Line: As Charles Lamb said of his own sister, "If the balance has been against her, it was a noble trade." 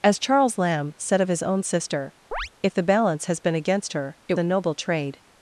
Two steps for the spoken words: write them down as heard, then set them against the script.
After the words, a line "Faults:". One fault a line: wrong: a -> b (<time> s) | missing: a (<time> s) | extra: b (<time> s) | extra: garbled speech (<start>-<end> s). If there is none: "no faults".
As Charles Lamb said of his own sister, "If the balance has been against her, it a noble trade."
Faults:
missing: was (4.3 s)